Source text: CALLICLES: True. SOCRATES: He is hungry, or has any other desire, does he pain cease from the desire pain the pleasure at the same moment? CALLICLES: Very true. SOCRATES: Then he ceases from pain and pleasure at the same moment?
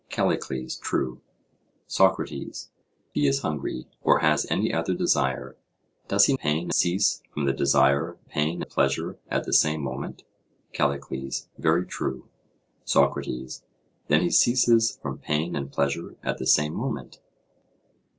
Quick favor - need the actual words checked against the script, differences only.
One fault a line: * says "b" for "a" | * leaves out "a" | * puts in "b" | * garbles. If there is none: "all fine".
all fine